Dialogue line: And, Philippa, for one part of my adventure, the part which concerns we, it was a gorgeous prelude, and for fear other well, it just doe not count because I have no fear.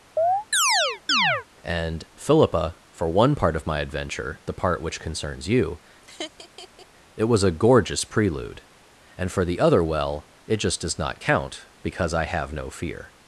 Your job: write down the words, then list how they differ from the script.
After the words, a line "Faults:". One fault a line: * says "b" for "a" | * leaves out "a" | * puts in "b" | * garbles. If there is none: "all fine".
And, Philippa, for one part of my adventure, the part which concerns you, it was a gorgeous prelude, and for the other well, it just does not count because I have no fear.
Faults:
* says "you" for "we"
* says "the" for "fear"
* says "does" for "doe"